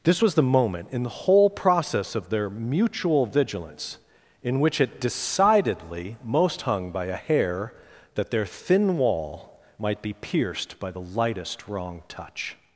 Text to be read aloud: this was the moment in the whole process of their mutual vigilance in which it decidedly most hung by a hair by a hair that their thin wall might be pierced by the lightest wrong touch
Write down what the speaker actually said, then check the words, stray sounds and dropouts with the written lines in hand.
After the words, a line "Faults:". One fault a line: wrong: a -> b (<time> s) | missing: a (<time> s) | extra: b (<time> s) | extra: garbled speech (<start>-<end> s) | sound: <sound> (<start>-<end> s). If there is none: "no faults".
this was the moment in the whole process of their mutual vigilance in which it decidedly most hung by a hair that their thin wall might be pierced by the lightest wrong touch
Faults:
missing: by a hair (7.7 s)